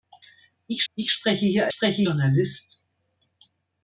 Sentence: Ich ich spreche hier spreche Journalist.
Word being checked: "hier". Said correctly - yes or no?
yes